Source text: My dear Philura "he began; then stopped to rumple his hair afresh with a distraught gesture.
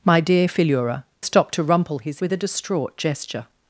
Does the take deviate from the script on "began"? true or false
true